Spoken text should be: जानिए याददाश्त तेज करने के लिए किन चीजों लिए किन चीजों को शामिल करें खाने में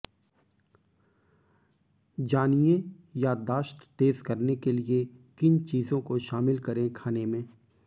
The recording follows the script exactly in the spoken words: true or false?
false